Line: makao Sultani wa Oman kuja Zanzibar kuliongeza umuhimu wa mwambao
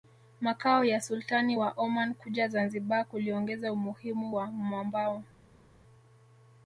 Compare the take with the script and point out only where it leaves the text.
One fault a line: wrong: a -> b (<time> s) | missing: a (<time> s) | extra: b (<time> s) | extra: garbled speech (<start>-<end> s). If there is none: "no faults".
extra: ya (0.8 s)